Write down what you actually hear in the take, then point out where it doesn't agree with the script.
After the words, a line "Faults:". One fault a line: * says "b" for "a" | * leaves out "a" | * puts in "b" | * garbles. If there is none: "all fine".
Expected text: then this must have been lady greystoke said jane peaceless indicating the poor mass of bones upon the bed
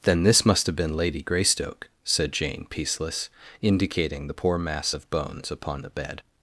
then this must have been lady greystoke said jane peaceless indicating the poor mass of bones upon the bed
Faults:
all fine